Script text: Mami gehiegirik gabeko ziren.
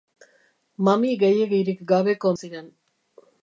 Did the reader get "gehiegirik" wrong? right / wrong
right